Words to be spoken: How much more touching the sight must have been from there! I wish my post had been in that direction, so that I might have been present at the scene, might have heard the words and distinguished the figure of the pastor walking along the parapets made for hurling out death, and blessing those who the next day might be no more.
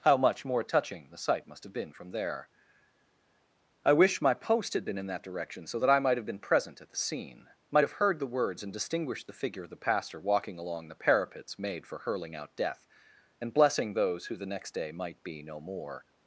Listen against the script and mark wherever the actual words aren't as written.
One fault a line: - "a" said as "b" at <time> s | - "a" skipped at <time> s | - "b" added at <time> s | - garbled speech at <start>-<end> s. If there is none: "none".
none